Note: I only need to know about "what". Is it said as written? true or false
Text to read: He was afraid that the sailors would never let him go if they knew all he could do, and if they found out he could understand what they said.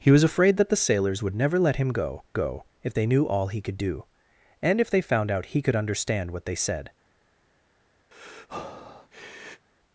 true